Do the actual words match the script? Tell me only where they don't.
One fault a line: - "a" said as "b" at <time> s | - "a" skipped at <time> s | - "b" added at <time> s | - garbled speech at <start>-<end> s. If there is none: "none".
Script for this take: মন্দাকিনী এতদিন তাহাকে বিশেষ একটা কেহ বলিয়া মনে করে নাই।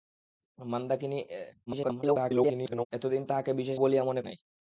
- garbled speech at 1.7-2.9 s
- "একটা কেহ" skipped at 3.8 s
- "করে" skipped at 4.2 s